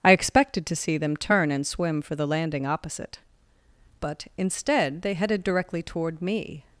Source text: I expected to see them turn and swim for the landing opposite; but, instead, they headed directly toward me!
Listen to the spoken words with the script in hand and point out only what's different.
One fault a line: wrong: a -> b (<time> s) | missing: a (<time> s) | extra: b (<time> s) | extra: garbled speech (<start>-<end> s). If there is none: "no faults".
no faults